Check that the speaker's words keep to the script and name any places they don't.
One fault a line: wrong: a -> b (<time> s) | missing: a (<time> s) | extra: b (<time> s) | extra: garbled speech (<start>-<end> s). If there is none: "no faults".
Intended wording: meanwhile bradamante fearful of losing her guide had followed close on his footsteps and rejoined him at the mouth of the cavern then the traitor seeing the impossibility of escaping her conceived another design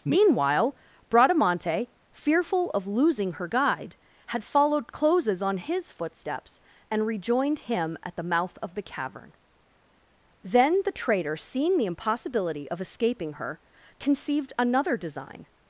wrong: close -> closes (4.9 s)